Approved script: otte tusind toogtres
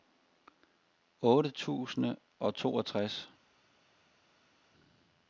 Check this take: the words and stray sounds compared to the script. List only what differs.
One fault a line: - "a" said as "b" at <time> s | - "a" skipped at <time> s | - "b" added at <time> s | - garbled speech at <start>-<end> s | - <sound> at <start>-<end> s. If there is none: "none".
- "og" added at 2.4 s